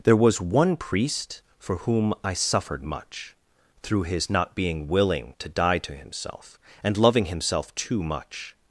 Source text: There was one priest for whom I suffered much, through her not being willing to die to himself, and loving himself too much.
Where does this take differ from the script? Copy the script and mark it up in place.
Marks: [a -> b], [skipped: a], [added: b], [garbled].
There was one priest for whom I suffered much, through [her -> his] not being willing to die to himself, and loving himself too much.